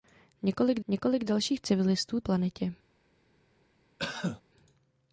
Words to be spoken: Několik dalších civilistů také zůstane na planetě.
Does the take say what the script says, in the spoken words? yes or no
no